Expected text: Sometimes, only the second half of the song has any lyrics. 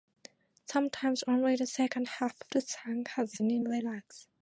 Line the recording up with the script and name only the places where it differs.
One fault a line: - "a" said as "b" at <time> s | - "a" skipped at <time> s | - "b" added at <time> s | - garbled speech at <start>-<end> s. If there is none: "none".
none